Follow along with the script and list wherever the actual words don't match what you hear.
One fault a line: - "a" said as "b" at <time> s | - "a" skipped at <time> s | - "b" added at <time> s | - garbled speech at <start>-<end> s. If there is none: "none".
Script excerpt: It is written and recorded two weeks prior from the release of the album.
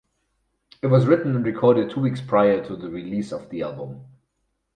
- "is" said as "was" at 0.9 s
- "from" said as "to" at 2.6 s